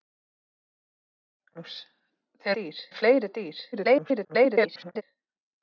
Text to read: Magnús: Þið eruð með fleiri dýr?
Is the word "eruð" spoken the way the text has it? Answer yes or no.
no